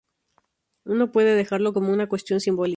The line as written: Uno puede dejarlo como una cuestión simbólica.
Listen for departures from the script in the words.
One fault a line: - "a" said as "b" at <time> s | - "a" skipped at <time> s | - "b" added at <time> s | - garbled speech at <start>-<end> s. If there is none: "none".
none